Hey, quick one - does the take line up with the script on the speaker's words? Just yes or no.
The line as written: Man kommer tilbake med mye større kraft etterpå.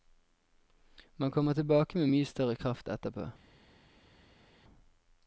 yes